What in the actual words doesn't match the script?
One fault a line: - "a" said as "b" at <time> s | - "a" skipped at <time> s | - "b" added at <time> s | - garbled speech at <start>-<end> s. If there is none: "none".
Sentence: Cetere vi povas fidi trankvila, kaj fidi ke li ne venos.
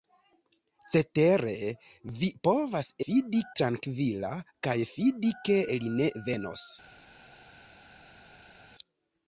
none